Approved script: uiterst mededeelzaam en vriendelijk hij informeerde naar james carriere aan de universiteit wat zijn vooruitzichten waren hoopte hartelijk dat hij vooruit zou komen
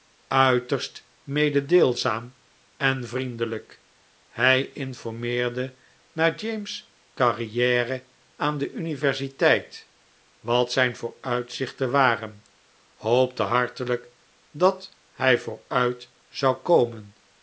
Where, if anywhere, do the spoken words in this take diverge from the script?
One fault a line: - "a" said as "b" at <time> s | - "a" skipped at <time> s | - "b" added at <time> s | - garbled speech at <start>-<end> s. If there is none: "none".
none